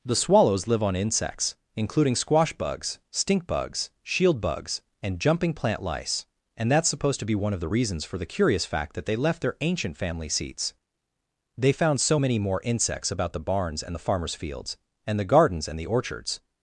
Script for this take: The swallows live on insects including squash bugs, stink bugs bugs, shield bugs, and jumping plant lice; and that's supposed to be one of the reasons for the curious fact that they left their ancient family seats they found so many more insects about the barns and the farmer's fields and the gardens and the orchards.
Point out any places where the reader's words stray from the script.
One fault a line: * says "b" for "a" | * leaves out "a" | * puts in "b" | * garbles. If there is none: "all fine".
* leaves out "bugs"